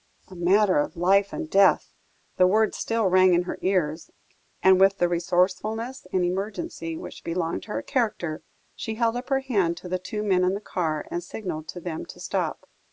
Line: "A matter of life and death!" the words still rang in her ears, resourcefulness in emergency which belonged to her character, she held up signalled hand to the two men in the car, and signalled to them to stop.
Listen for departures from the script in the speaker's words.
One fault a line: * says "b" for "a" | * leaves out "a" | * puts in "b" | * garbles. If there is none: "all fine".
* puts in "and with the"
* says "her" for "signalled"